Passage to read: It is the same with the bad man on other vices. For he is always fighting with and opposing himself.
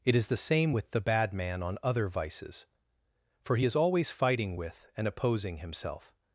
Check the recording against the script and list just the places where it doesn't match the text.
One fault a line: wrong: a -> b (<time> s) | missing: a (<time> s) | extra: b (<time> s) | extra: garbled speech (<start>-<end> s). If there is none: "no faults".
no faults